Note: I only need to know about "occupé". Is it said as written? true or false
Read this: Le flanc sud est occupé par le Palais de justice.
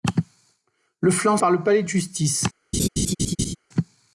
false